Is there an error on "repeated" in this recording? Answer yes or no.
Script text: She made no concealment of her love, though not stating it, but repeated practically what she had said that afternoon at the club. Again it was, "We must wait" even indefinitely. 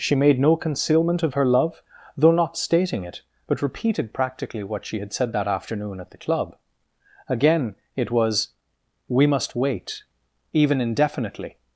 no